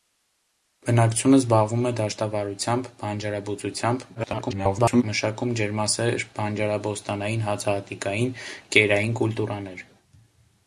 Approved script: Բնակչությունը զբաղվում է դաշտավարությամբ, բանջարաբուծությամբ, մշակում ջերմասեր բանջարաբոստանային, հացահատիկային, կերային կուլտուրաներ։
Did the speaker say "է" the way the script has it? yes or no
yes